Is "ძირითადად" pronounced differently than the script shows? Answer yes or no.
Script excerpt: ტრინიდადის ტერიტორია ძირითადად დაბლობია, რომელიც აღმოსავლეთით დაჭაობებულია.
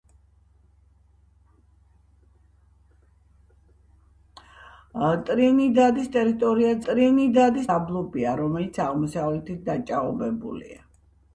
yes